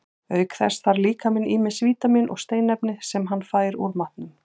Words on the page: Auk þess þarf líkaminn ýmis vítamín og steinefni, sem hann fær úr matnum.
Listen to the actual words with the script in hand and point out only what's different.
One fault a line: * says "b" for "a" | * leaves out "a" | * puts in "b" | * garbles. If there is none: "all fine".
all fine